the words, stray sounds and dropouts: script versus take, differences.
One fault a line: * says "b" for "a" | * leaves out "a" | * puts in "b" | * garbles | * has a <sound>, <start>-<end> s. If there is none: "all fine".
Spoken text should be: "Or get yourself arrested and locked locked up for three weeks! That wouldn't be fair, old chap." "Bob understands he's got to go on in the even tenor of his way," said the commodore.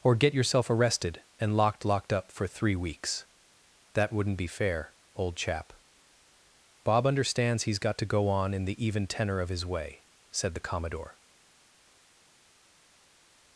all fine